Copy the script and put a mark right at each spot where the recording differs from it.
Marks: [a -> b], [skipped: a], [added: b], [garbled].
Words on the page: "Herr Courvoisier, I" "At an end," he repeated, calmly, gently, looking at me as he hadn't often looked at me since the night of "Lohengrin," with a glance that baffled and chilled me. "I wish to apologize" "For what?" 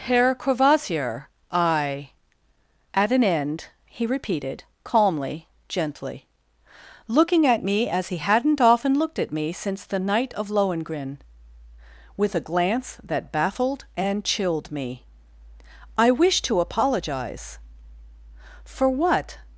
"Herr Courvoisier, I" "At an end," he repeated, calmly, gently, looking at me as he hadn't often looked at me since the night of "Lohengrin," with a glance that baffled and chilled me. "I wish to apologize" "For what?"